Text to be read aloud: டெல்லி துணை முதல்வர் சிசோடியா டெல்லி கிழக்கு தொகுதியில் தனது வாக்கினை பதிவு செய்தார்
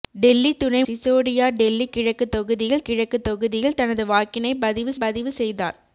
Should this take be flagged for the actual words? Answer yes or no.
yes